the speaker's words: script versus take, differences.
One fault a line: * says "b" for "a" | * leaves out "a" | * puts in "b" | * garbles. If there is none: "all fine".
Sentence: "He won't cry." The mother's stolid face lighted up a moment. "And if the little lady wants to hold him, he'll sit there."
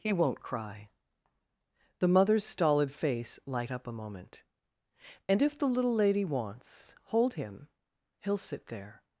* says "light" for "lighted"
* leaves out "to"